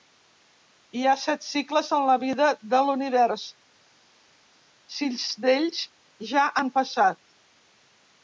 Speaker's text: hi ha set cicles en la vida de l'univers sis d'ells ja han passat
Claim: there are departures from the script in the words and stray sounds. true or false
false